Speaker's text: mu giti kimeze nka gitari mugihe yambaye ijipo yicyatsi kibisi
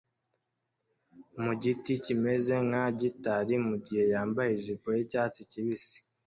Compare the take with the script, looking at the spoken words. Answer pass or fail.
pass